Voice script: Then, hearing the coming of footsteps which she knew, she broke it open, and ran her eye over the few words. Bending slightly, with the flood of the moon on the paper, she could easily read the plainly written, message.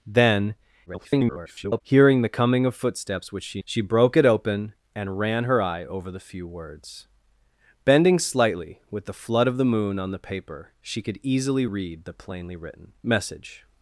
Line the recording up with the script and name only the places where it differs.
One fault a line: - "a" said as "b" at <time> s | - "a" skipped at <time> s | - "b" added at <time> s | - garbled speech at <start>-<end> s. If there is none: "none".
- garbled speech at 0.9-1.8 s
- "knew" skipped at 3.6 s